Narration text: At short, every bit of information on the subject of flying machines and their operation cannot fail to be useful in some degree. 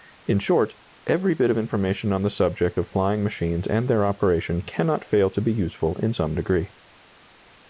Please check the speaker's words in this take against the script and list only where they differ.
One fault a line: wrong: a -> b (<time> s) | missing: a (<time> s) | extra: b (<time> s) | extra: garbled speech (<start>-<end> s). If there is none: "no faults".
wrong: At -> In (0.2 s)